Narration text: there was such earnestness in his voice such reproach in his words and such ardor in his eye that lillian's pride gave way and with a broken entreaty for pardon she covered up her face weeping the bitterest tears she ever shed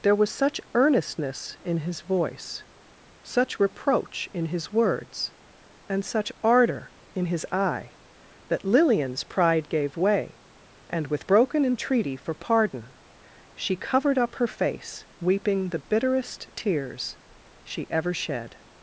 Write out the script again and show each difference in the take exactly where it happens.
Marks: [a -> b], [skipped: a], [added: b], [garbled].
there was such earnestness in his voice such reproach in his words and such ardor in his eye that lillian's pride gave way and with [skipped: a] broken entreaty for pardon she covered up her face weeping the bitterest tears she ever shed